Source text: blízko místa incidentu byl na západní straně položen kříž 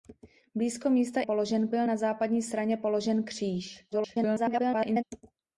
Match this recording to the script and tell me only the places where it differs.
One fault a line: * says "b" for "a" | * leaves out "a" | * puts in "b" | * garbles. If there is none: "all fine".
* says "položen" for "incidentu"
* garbles